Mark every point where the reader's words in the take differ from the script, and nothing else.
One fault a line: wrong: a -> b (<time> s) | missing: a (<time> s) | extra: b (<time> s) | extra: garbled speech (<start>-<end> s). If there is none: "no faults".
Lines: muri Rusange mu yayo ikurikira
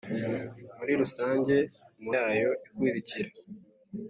no faults